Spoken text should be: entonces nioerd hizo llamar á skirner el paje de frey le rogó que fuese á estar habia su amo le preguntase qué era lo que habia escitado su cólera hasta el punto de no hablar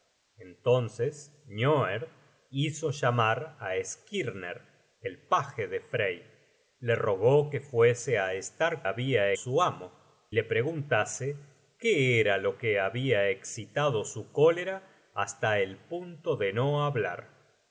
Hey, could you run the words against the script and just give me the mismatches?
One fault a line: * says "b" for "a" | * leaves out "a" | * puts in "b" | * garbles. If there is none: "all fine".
all fine